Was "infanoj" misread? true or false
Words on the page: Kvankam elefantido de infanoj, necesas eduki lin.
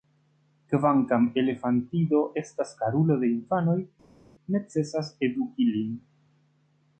false